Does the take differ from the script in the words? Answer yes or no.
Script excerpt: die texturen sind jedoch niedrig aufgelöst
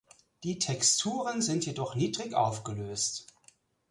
no